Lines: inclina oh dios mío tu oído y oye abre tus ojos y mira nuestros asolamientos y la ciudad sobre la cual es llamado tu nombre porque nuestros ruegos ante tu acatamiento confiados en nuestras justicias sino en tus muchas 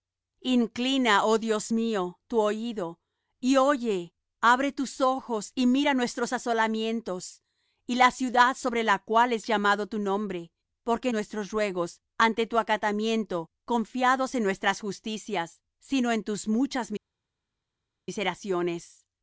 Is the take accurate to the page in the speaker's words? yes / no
yes